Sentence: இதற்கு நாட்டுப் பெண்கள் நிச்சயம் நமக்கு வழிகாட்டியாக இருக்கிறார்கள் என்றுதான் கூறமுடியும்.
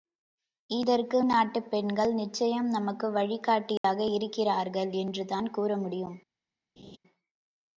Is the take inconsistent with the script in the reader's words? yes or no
no